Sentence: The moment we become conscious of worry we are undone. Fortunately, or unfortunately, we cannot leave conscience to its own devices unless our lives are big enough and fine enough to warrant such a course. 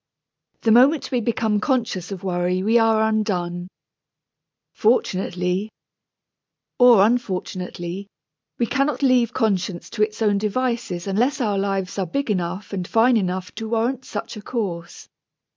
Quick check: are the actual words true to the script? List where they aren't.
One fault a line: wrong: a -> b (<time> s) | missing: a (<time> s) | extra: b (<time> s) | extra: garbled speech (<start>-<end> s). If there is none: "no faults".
no faults